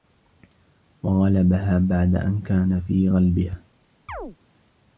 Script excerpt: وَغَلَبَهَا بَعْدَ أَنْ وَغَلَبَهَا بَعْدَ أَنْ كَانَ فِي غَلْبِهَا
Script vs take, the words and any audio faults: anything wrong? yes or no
yes